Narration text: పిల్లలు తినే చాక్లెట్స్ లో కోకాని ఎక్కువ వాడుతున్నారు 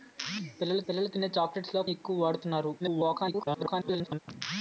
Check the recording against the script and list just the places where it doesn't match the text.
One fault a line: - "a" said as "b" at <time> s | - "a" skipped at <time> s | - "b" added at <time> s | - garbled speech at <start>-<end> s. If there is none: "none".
- "పిల్లలు" added at 0.8 s
- "కోకాని" skipped at 1.8 s
- garbled speech at 2.8-4.2 s